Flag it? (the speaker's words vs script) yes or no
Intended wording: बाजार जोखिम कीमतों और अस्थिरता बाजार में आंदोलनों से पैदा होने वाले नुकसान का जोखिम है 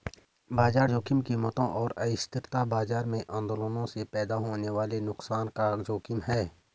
no